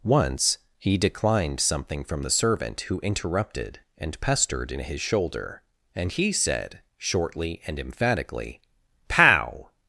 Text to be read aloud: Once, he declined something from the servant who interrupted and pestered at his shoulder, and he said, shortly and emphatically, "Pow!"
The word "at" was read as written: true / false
false